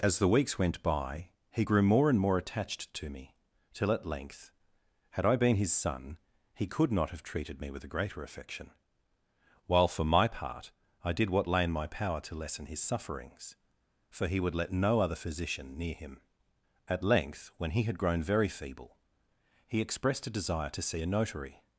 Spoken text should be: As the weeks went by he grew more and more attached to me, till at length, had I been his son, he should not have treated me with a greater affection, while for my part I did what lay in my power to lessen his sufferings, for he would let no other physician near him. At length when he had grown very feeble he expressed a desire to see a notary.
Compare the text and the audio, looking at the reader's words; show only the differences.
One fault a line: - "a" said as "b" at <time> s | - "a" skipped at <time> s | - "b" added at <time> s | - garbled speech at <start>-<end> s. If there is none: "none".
- "should" said as "could" at 6.7 s